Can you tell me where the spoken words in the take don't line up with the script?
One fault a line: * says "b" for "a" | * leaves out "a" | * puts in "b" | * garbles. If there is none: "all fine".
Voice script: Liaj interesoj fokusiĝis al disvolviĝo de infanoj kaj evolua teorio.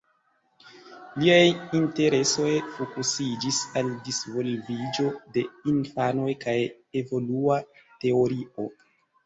all fine